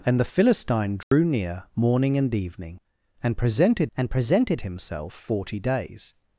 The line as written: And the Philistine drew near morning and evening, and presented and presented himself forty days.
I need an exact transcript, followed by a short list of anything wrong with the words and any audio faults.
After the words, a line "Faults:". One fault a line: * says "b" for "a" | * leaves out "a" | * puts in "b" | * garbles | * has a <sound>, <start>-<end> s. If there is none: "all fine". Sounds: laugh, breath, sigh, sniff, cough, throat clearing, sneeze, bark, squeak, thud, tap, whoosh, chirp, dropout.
And the Philistine drew near morning and evening, and presented and presented himself forty days.
Faults:
* has a dropout, 1.0-1.1 s